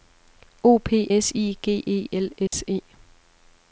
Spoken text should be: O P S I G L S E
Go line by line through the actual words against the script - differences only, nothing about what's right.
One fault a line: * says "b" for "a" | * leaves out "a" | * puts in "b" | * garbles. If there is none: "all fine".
* puts in "E"